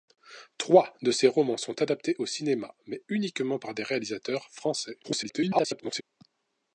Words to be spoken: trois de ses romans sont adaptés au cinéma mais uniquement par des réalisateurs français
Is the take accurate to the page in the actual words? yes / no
no